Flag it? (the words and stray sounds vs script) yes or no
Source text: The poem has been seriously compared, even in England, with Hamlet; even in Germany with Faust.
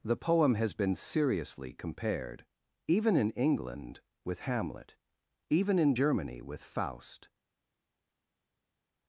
no